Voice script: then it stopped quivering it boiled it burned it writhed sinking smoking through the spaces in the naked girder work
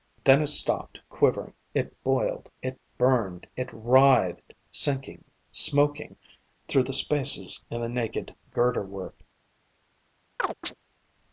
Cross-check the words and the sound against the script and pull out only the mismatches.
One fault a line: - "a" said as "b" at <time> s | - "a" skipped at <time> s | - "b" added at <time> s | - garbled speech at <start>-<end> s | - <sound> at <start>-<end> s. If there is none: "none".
- chirp at 10.4-10.7 s